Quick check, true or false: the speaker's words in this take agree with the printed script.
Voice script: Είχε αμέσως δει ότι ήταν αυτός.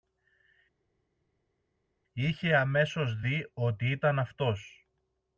true